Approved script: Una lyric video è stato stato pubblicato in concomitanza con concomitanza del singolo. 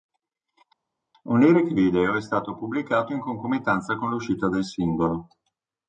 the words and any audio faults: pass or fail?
fail